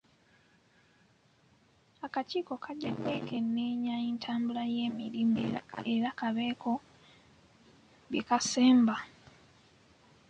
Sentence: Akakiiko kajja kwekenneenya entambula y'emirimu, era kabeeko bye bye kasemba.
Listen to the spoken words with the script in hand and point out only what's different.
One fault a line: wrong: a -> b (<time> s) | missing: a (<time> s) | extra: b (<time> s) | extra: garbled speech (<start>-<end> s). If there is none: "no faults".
missing: bye (8.2 s)